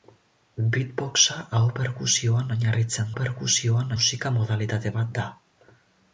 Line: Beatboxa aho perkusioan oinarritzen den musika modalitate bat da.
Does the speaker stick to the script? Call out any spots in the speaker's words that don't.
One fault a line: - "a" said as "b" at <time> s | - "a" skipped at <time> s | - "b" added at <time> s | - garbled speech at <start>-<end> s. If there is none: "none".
- "den" said as "perkusioan" at 3.2 s